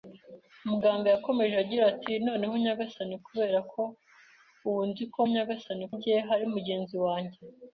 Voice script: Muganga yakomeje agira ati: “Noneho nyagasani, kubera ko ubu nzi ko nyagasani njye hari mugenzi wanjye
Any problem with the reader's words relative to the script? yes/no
no